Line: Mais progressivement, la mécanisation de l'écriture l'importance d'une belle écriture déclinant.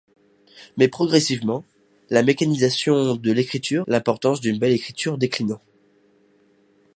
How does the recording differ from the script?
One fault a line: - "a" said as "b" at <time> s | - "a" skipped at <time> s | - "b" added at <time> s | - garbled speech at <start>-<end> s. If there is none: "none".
none